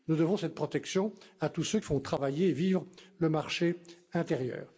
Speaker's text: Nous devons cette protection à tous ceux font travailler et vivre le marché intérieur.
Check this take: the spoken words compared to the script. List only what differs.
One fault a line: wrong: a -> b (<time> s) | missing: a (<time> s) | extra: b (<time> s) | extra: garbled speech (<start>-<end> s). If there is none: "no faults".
no faults